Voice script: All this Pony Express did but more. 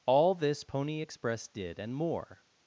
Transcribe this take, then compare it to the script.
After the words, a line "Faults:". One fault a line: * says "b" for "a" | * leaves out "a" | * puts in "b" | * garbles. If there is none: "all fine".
All this Pony Express did and more.
Faults:
* says "and" for "but"